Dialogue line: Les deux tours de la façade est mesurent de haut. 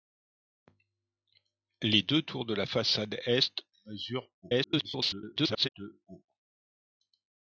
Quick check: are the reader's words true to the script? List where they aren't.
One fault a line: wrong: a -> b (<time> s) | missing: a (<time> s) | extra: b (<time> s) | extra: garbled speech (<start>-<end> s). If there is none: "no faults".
extra: garbled speech (4.4-5.7 s)